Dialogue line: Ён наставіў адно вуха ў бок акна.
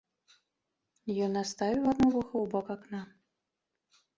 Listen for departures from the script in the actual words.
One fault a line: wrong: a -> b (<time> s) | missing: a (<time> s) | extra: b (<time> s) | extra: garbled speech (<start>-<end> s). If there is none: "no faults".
no faults